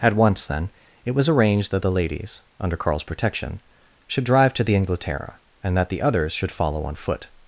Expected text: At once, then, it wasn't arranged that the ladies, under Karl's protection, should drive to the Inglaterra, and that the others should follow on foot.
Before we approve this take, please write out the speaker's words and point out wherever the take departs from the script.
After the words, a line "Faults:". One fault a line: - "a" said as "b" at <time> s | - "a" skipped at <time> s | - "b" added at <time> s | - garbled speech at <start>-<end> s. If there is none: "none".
At once, then, it was arranged that the ladies, under Karl's protection, should drive to the Inglaterra, and that the others should follow on foot.
Faults:
- "wasn't" said as "was" at 1.1 s